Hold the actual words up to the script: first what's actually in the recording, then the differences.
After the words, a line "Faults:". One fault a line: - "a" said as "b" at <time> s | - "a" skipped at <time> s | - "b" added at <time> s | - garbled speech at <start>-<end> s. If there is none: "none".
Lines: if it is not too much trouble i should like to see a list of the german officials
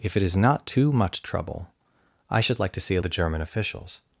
if it is not too much trouble i should like to see a the german officials
Faults:
- "list of" skipped at 3.0 s